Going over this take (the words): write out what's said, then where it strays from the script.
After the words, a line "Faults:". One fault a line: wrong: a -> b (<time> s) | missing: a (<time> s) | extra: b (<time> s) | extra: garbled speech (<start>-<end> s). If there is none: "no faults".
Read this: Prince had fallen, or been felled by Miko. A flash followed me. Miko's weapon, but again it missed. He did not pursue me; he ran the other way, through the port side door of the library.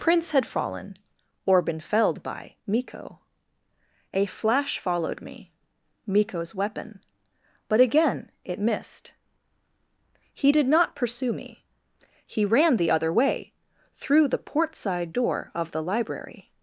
Prince had fallen, or been felled by Miko. A flash followed me. Miko's weapon, but again it missed. He did not pursue me; he ran the other way, through the port side door of the library.
Faults:
no faults